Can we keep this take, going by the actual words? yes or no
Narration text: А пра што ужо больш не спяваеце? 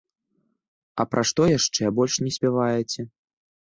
no